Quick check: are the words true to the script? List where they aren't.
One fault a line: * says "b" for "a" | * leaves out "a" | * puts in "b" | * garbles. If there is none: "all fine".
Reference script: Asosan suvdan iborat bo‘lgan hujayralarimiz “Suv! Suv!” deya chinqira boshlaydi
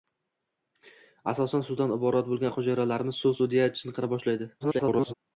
* garbles